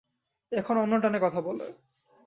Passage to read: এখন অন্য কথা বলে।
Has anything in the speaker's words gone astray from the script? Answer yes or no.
yes